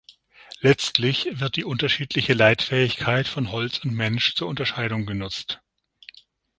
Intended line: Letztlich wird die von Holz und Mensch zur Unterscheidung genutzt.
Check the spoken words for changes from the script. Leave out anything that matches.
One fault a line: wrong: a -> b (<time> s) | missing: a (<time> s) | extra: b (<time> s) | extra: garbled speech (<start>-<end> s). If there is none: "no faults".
extra: unterschiedliche Leitfähigkeit (1.6 s)